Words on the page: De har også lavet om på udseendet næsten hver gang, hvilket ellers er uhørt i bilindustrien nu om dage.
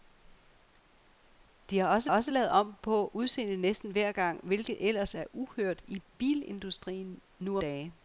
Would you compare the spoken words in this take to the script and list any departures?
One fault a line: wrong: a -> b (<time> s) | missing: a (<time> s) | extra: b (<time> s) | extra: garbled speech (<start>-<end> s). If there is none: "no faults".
extra: også (2.1 s)
missing: om (7.6 s)